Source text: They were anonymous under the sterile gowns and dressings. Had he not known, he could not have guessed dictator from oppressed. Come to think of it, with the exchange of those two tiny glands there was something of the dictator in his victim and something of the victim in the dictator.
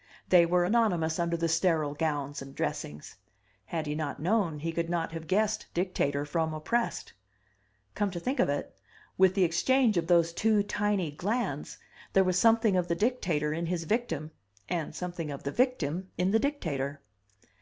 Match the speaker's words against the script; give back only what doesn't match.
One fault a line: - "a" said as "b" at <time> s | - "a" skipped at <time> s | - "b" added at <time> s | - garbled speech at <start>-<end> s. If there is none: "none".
none